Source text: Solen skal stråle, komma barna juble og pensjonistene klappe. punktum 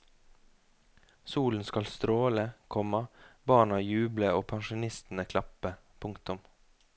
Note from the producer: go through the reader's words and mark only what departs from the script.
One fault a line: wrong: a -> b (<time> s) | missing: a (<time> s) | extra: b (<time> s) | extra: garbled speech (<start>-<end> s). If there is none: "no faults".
no faults